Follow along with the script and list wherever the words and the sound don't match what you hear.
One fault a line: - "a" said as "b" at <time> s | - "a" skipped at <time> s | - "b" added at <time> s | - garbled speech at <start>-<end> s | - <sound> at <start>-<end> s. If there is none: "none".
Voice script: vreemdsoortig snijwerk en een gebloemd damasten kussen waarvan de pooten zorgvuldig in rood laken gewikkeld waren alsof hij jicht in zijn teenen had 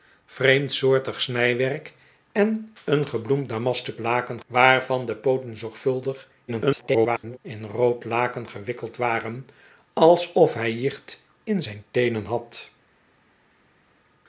- "kussen" said as "laken" at 4.0 s
- garbled speech at 6.5-7.4 s